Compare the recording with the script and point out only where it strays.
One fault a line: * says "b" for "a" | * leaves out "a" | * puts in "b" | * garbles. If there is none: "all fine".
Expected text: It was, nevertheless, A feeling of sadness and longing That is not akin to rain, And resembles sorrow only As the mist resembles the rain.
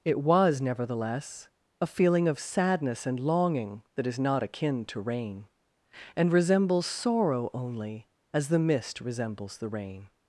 all fine